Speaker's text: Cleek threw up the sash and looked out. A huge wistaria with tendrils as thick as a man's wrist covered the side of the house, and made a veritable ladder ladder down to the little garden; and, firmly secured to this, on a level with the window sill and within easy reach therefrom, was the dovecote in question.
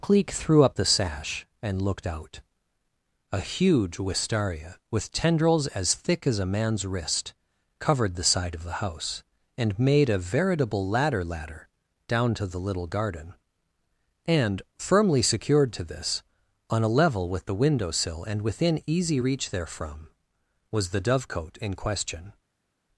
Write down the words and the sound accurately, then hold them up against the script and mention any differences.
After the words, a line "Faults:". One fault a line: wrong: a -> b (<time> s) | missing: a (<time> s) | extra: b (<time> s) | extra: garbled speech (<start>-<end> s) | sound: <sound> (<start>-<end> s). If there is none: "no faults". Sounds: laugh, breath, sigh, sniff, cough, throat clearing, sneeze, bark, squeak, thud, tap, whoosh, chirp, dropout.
Cleek threw up the sash and looked out. A huge wistaria with tendrils as thick as a man's wrist covered the side of the house, and made a veritable ladder ladder down to the little garden; and, firmly secured to this, on a level with the window sill and within easy reach therefrom, was the dovecote in question.
Faults:
no faults